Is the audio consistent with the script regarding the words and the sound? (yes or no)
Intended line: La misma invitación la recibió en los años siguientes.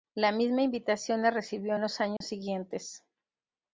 no